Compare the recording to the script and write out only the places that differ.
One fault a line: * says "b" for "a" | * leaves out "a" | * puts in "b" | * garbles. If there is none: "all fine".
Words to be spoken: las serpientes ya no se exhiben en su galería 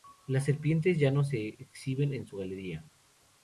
all fine